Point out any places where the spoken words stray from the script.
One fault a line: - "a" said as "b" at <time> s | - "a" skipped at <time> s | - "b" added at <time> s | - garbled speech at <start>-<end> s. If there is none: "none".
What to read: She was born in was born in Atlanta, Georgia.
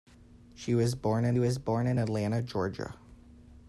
none